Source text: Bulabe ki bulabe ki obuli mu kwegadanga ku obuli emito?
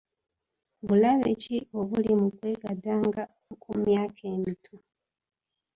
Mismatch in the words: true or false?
true